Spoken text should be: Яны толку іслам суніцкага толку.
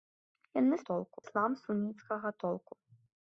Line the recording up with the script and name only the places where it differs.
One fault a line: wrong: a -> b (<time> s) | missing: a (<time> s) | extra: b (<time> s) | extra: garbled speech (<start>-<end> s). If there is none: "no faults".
no faults